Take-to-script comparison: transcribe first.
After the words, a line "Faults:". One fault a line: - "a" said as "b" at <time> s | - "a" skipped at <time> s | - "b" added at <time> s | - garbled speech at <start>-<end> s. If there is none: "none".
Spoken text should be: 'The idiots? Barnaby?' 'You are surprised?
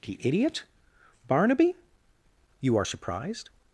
'The idiot? Barnaby?' 'You are surprised?
Faults:
- "idiots" said as "idiot" at 0.2 s